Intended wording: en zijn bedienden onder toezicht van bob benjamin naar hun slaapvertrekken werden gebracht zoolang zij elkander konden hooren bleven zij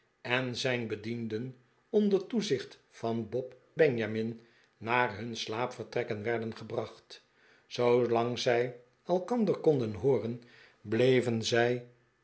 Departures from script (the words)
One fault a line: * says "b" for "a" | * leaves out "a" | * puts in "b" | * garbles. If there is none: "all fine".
all fine